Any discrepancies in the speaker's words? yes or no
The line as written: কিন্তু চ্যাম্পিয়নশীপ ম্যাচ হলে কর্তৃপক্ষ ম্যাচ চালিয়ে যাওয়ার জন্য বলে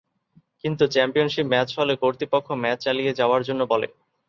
no